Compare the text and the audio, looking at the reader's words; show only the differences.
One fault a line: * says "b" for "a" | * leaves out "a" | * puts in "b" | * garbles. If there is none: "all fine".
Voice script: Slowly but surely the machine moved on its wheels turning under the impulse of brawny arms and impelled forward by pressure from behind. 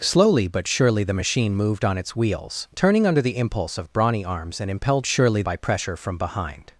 * says "surely" for "forward"